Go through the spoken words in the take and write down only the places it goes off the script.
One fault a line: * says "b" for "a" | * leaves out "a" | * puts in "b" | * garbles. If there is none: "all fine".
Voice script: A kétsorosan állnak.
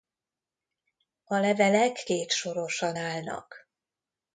* puts in "levelek"